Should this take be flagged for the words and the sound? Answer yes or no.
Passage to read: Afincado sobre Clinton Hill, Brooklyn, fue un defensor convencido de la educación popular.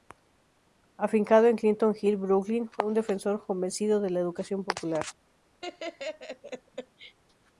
yes